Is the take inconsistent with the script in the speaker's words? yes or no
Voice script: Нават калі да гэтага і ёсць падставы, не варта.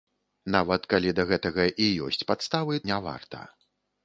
no